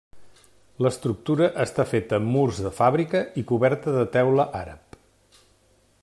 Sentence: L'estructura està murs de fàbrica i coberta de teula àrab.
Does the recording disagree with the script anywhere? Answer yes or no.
yes